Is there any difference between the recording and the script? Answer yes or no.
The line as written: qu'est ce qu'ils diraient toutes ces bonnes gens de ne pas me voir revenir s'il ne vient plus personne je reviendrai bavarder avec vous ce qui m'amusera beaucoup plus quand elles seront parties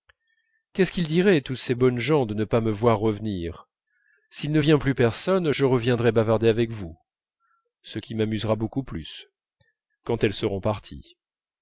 no